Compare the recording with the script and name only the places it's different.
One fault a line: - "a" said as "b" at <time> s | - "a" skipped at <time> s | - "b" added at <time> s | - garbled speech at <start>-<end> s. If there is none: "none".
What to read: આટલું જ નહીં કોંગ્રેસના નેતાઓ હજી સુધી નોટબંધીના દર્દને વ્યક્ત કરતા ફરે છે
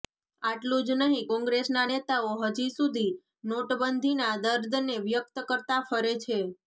none